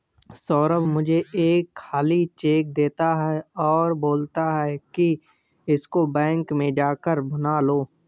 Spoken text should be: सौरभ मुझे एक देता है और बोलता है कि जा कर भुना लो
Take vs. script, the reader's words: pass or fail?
fail